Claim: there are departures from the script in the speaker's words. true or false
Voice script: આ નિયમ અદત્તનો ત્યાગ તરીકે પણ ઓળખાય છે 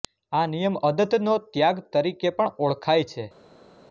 false